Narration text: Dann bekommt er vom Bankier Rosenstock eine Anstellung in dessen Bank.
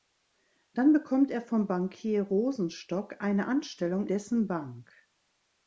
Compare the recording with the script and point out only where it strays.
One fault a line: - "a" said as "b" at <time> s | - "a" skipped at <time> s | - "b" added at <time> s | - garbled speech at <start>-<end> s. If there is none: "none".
- "in" skipped at 4.1 s